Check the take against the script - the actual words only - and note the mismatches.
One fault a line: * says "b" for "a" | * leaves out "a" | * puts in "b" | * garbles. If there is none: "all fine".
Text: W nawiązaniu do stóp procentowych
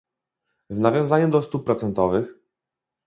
all fine